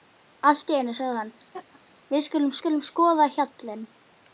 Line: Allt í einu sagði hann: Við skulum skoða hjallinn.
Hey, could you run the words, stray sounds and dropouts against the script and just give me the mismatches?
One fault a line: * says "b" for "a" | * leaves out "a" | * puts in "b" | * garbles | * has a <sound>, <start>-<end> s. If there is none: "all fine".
* has a laugh, 1.5-1.8 s
* puts in "skulum"